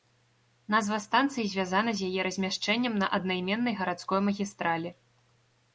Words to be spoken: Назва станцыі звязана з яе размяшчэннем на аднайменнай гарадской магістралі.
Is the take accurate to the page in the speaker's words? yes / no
yes